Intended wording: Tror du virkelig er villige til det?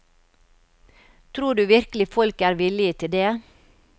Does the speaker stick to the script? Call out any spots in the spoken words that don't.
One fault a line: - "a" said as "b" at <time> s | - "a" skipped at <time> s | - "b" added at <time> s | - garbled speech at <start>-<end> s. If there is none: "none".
- "folk" added at 2.1 s